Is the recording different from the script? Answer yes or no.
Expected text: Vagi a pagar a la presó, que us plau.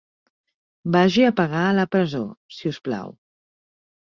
yes